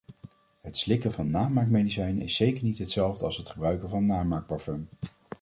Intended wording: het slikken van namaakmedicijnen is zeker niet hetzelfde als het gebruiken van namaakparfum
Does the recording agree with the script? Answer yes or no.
yes